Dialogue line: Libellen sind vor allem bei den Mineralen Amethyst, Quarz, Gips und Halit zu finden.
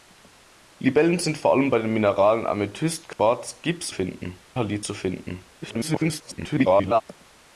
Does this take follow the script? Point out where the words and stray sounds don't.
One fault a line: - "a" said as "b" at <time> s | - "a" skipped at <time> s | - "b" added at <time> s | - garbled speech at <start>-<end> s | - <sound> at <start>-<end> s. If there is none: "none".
- dropout at 3.1-3.2 s
- "und" said as "finden" at 3.9 s
- garbled speech at 5.6-7.0 s